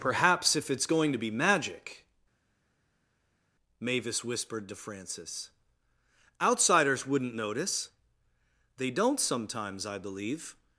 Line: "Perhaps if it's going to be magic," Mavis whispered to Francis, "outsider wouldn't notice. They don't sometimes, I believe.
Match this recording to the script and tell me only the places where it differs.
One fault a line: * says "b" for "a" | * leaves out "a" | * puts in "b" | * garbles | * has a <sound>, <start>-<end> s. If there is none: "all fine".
* says "outsiders" for "outsider"